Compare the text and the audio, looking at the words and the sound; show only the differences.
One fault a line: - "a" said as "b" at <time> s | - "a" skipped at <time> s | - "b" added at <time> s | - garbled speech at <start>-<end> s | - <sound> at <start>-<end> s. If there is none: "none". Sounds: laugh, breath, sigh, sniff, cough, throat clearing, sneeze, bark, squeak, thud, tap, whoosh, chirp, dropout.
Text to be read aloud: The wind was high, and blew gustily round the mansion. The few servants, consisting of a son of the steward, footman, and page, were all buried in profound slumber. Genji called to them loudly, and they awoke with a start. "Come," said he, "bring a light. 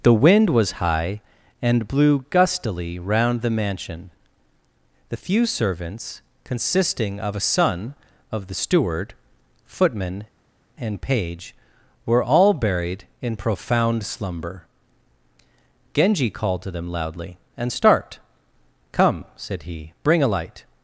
- "they awoke with a" skipped at 17.7 s